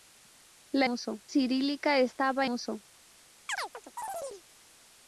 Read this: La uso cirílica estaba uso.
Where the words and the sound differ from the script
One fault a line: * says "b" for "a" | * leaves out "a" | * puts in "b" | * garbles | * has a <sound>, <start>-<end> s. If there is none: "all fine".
* has a chirp, 3.5-4.4 s